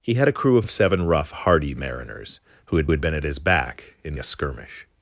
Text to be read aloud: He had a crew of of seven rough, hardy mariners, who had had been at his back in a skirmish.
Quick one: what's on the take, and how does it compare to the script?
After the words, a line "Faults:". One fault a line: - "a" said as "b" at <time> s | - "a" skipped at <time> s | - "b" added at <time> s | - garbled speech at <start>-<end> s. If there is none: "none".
He had a crew of of seven rough, hardy mariners, who had had been at his back in a skirmish.
Faults:
none